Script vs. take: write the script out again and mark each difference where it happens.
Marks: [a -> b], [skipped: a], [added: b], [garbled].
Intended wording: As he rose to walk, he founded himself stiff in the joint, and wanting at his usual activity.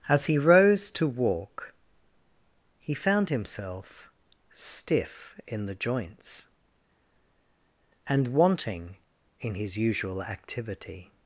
As he rose to walk, he [founded -> found] himself stiff in the [joint, -> joints] and wanting [at -> in] his usual activity.